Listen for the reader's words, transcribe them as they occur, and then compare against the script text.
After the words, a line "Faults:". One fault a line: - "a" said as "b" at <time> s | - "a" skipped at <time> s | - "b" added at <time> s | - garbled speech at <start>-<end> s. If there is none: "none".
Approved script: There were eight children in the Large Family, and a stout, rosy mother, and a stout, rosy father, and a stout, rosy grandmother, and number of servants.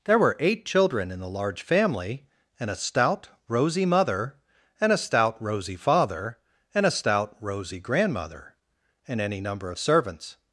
There were eight children in the Large Family, and a stout, rosy mother, and a stout, rosy father, and a stout, rosy grandmother, and any number of servants.
Faults:
- "any" added at 9.2 s